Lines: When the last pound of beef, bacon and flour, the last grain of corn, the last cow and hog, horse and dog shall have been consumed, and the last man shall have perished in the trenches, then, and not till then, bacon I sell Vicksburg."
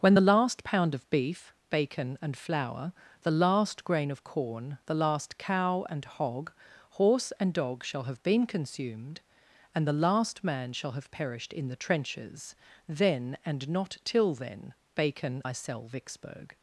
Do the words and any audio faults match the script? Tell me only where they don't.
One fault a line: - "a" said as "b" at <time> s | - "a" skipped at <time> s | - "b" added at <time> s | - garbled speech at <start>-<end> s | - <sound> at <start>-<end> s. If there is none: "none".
none